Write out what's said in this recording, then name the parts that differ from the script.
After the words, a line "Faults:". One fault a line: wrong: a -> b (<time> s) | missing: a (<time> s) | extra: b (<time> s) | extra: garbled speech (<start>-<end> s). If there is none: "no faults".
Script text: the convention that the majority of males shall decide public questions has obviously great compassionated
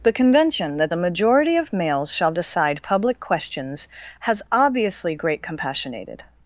the convention that the majority of males shall decide public questions has obviously great compassionated
Faults:
no faults